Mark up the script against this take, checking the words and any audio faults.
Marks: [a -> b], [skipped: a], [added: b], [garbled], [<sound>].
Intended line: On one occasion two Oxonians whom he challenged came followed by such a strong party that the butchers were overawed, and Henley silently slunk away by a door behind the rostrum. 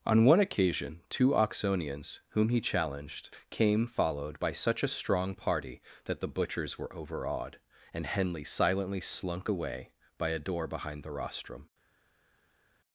On one occasion two Oxonians whom he challenged came followed by such a strong party that the butchers were overawed, and Henley silently slunk away by a door behind the rostrum.